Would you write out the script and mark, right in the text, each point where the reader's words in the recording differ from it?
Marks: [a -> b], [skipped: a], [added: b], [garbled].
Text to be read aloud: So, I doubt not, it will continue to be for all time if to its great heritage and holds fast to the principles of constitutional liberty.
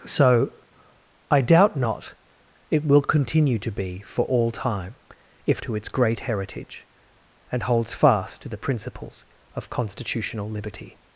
So, I doubt not, it will continue to be for all time if to its great heritage and holds fast to the principles of constitutional liberty.